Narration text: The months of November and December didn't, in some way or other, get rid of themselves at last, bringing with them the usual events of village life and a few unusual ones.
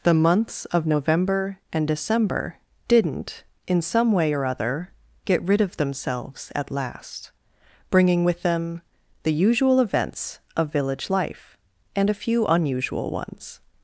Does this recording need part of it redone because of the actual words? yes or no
no